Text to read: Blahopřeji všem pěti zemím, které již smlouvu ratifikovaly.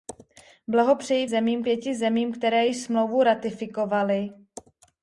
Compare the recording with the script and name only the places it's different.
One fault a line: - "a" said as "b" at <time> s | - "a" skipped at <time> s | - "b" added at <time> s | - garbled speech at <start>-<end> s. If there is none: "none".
- "všem" said as "zemím" at 1.3 s